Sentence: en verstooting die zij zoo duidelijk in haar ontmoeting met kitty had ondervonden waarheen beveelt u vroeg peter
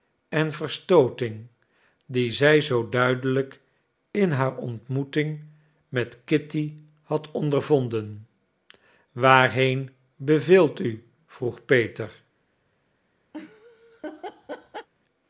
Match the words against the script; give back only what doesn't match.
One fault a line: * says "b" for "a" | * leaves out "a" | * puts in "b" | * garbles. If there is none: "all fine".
all fine